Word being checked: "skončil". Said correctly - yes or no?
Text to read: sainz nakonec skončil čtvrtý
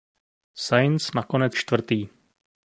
no